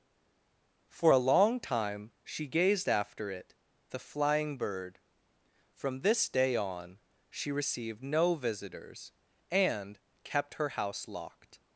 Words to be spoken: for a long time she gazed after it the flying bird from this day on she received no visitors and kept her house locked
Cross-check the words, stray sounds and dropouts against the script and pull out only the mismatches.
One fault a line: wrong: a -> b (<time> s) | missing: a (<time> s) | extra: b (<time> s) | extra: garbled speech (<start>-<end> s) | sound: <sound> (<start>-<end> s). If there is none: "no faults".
no faults